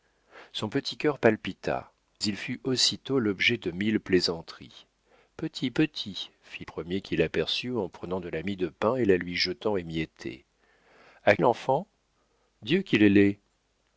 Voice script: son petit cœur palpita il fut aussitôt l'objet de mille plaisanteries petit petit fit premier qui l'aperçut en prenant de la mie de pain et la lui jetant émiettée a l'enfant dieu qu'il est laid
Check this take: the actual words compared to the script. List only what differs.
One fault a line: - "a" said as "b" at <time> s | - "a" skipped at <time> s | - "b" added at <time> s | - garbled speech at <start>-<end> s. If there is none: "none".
none